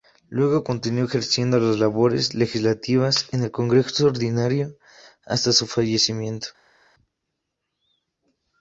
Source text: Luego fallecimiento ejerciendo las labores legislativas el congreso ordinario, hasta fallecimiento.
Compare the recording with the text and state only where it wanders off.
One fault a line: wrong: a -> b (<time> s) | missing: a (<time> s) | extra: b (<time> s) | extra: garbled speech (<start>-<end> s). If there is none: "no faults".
wrong: fallecimiento -> continuó (0.6 s)
extra: en (3.3 s)
extra: su (5.5 s)